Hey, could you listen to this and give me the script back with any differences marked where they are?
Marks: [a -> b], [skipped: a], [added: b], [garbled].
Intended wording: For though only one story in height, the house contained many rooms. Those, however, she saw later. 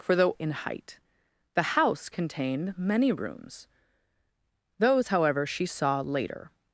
For though [skipped: only one story] in height, the house contained many rooms. Those, however, she saw later.